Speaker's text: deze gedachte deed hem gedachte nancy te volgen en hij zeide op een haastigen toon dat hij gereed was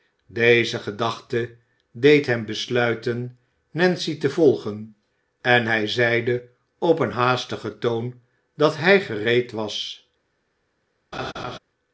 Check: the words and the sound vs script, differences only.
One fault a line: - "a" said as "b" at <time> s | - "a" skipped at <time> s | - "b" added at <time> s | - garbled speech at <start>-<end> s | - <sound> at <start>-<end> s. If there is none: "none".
- "gedachte" said as "besluiten" at 2.5 s
- laugh at 11.1-11.6 s